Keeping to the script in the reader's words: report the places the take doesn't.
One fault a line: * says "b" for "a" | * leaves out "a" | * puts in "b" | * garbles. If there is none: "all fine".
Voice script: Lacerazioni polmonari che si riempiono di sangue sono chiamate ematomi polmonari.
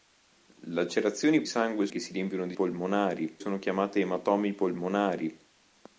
* says "sangue" for "polmonari"
* says "polmonari" for "sangue"